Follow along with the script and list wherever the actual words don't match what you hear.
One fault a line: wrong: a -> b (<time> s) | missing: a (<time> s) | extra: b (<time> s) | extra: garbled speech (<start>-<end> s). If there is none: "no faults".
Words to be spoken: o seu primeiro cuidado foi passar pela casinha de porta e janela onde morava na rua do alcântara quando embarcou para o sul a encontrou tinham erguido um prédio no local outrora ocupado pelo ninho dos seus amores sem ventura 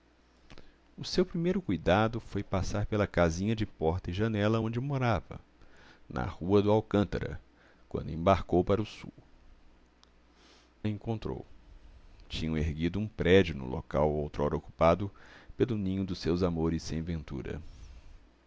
no faults